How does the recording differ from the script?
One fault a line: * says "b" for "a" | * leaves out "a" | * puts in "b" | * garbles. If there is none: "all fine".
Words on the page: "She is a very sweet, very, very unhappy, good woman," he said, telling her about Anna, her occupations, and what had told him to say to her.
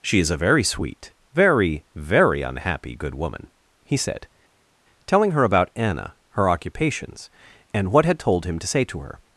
all fine